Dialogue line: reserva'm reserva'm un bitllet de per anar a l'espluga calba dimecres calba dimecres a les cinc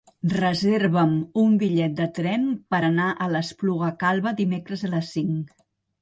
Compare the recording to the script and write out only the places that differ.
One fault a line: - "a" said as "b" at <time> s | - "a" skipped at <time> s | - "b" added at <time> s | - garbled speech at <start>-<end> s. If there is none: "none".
- "reserva'm" skipped at 1.1 s
- "tren" added at 2.2 s
- "calba dimecres" skipped at 4.8 s